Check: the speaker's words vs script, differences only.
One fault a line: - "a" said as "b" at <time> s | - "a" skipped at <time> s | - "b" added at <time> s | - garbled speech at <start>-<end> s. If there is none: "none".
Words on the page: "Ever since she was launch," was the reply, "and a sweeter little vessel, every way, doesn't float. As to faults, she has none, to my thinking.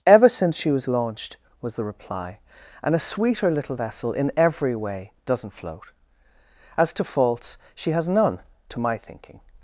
- "launch" said as "launched" at 0.9 s
- "in" added at 4.1 s